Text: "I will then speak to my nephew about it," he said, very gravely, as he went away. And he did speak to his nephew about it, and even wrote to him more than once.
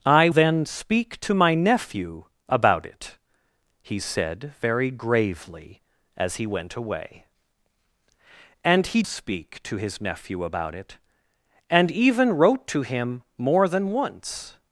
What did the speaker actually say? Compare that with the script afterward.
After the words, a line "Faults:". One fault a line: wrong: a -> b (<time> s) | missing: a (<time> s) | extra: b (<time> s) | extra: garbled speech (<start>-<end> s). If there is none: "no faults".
"I then speak to my nephew about it," he said, very gravely, as he went away. And he speak to his nephew about it, and even wrote to him more than once.
Faults:
missing: will (0.3 s)
missing: did (9.0 s)